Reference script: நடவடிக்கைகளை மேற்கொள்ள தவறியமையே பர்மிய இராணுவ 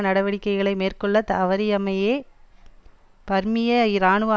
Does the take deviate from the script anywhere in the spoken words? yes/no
no